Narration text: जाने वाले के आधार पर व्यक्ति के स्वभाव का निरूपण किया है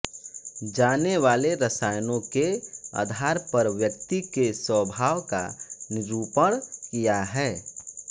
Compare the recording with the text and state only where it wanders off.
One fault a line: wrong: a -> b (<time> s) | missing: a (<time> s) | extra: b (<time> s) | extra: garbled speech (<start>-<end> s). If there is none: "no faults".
extra: रसायनों (1.6 s)